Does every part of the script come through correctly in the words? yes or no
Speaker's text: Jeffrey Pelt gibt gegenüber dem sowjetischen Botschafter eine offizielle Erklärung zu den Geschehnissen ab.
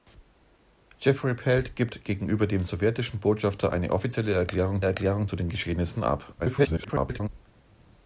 no